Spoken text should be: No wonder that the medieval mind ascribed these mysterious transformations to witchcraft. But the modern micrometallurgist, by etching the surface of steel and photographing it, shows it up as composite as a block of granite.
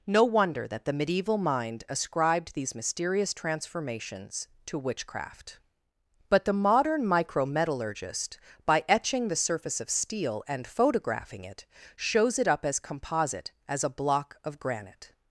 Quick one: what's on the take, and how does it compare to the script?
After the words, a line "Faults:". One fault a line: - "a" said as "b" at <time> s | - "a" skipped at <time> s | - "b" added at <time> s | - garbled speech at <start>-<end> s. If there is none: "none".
No wonder that the medieval mind ascribed these mysterious transformations to witchcraft. But the modern micrometallurgist, by etching the surface of steel and photographing it, shows it up as composite as a block of granite.
Faults:
none